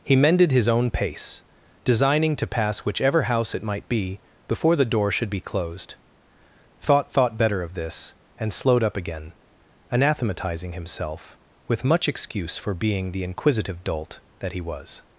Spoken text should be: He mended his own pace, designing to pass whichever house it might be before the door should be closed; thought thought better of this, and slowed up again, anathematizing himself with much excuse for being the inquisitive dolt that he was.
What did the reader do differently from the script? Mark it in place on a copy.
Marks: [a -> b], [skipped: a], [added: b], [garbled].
He mended his own pace, designing to pass whichever house it might be before the door should be closed; thought thought better of this, and slowed up again, anathematizing himself with much excuse for being the inquisitive dolt that he was.